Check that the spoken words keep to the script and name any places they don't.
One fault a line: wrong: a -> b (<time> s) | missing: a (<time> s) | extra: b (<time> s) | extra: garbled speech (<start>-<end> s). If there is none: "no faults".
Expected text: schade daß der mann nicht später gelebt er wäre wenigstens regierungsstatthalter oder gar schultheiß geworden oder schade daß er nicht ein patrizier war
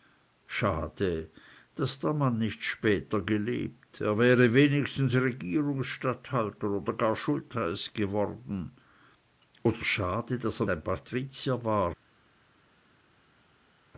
missing: nicht (10.7 s)